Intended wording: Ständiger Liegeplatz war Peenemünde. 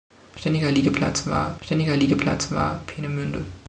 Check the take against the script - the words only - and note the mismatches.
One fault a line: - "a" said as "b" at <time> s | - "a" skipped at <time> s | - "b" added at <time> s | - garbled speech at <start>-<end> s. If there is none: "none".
- "ständiger Liegeplatz war" added at 1.6 s